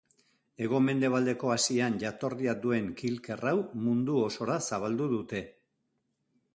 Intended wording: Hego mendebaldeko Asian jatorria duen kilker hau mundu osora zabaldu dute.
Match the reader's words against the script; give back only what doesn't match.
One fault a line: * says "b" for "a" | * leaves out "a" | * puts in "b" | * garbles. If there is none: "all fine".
all fine